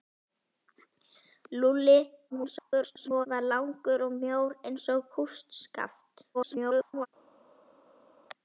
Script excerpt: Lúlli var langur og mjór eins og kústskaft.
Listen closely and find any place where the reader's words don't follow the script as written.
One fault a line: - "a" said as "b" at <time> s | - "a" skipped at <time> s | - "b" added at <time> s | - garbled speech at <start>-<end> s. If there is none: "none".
- garbled speech at 2.3-3.3 s
- garbled speech at 6.3-7.1 s